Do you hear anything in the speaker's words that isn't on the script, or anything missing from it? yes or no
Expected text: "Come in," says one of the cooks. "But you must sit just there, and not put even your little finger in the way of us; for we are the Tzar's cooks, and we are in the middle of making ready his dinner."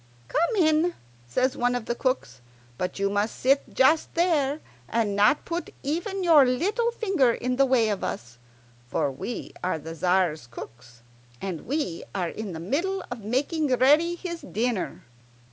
no